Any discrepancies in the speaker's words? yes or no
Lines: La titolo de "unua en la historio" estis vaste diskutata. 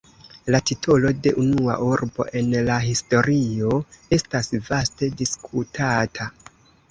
yes